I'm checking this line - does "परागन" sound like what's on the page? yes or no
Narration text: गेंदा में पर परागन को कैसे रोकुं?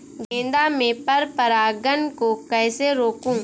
yes